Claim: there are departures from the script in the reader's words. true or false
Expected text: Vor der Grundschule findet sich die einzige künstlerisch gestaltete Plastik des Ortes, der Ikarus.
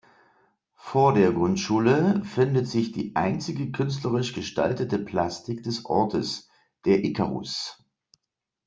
false